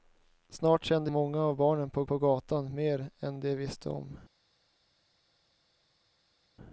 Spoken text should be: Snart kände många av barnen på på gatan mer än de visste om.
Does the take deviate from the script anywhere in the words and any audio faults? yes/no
no